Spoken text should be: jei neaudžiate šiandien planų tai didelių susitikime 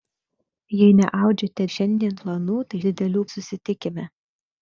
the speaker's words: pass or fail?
pass